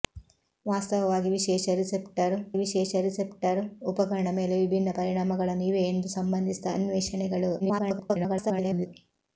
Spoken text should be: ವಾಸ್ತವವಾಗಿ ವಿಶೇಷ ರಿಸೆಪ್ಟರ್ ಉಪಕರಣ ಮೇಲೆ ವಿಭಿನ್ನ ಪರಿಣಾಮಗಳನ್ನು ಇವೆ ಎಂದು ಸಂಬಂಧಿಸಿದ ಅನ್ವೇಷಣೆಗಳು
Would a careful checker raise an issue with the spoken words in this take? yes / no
yes